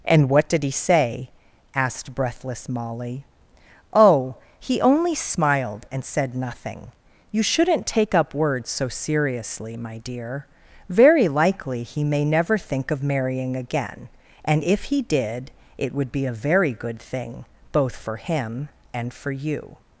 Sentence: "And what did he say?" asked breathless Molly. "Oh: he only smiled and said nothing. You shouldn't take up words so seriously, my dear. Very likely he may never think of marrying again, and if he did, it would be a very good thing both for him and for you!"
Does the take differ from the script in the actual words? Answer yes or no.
no